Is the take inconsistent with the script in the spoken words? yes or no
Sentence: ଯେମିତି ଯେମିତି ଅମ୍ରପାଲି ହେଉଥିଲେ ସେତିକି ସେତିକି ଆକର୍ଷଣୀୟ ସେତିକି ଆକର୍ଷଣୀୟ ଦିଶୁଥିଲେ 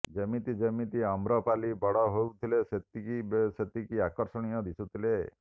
yes